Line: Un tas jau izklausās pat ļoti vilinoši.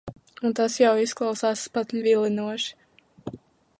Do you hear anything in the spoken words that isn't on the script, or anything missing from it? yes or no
yes